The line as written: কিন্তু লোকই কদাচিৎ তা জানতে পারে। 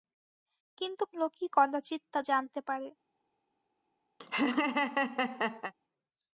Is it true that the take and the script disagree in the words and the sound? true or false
true